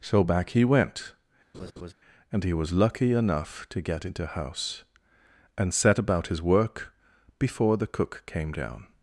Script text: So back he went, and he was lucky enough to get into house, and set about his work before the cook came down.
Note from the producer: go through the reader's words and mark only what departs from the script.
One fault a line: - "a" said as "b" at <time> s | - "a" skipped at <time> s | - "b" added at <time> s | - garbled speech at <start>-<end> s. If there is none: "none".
none